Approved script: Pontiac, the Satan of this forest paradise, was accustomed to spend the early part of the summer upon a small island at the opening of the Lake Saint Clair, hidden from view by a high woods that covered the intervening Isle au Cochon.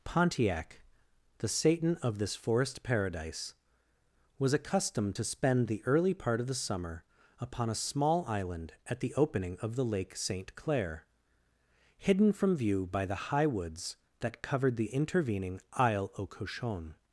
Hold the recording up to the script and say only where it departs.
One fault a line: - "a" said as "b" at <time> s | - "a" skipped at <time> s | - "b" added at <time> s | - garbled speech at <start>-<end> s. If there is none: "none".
- "a" said as "the" at 13.0 s